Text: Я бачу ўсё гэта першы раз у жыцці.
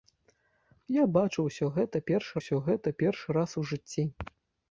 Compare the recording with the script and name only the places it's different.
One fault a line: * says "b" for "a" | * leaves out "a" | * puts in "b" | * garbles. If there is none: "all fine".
* puts in "ўсё гэта першы"